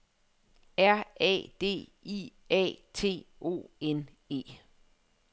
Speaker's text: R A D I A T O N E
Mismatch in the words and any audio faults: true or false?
false